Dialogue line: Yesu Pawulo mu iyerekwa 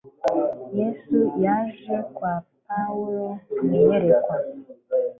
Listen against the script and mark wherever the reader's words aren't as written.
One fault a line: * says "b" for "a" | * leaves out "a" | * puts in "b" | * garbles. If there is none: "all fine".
* puts in "yaje kwa"